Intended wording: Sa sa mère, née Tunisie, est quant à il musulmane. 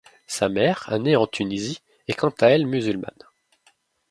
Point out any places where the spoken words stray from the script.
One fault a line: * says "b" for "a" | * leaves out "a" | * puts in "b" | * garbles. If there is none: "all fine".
* leaves out "sa"
* puts in "en"
* says "elle" for "il"